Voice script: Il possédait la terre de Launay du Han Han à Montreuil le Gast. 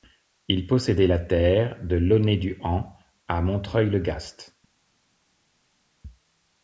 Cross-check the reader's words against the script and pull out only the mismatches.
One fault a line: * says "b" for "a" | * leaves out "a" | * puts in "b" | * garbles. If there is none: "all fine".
* leaves out "Han"